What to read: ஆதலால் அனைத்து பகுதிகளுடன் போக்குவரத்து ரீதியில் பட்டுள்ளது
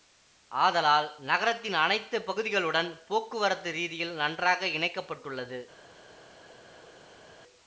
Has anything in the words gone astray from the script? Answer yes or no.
yes